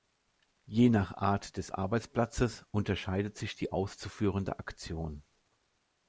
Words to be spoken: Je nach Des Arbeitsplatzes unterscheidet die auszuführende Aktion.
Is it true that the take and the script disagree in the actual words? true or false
true